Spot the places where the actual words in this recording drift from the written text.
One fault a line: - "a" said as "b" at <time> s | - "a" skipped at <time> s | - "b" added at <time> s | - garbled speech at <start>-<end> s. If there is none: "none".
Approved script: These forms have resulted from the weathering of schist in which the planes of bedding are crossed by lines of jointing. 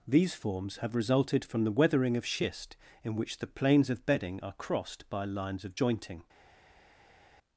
none